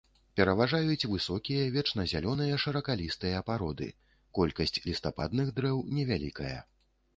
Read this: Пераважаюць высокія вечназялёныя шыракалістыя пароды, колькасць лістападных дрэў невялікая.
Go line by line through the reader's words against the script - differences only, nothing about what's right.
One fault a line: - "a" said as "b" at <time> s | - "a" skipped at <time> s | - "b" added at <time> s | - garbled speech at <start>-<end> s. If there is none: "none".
none